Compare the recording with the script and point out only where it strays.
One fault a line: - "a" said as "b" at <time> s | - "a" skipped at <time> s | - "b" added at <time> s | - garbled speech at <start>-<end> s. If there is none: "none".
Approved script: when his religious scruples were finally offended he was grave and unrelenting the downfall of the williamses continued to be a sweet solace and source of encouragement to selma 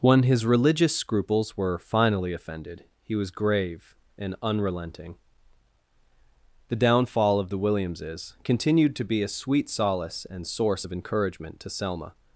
none